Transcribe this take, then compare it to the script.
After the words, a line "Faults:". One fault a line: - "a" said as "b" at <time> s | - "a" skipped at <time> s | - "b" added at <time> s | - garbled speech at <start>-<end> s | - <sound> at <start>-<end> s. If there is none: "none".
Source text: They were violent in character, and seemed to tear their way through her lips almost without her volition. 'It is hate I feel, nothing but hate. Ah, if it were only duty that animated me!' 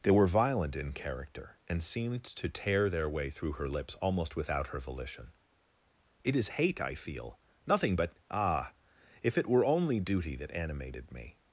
They were violent in character, and seemed to tear their way through her lips almost without her volition. 'It is hate I feel, nothing but. Ah, if it were only duty that animated me!'
Faults:
- "hate" skipped at 8.1 s